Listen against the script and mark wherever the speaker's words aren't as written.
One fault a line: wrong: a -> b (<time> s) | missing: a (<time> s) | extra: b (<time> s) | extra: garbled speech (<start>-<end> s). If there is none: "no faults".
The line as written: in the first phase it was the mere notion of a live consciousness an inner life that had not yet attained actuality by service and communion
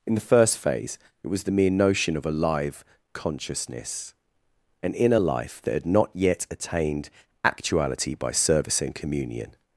no faults